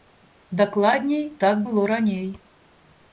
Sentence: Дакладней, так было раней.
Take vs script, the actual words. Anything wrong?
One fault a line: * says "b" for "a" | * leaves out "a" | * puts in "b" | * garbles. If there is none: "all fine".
all fine